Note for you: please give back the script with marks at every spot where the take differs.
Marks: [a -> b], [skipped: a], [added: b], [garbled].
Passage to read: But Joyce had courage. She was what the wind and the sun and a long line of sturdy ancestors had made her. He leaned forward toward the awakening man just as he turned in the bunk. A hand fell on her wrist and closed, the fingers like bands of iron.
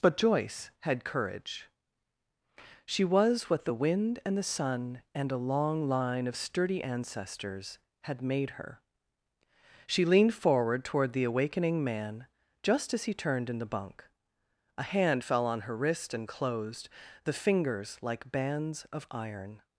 But Joyce had courage. She was what the wind and the sun and a long line of sturdy ancestors had made her. [He -> She] leaned forward toward the awakening man just as he turned in the bunk. A hand fell on her wrist and closed, the fingers like bands of iron.